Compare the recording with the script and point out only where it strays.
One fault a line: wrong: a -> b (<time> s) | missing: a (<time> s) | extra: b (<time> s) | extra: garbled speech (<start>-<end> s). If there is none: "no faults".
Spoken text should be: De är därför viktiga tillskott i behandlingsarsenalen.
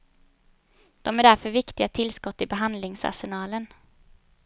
no faults